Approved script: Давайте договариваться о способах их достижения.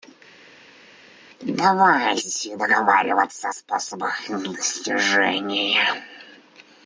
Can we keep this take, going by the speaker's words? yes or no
yes